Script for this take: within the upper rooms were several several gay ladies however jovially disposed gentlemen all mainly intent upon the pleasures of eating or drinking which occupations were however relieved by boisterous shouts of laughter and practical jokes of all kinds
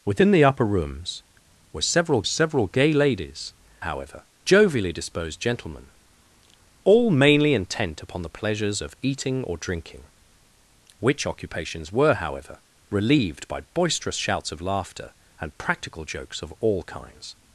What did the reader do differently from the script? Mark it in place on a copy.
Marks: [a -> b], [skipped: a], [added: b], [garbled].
within the upper rooms were several several gay ladies however jovially disposed gentlemen all mainly intent upon the pleasures of eating or drinking which occupations were however relieved by boisterous shouts of laughter and practical jokes of all kinds